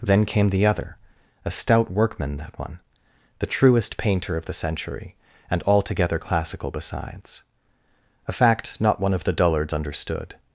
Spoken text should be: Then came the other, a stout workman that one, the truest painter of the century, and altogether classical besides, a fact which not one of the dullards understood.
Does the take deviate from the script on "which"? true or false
true